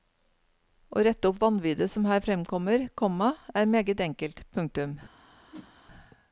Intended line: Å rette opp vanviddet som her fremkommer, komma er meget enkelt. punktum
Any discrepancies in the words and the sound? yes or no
yes